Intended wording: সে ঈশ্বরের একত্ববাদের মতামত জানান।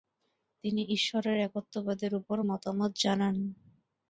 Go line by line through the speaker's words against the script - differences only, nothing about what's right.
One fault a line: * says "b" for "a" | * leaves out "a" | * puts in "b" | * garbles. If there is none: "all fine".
* says "তিনি" for "সে"
* puts in "উপর"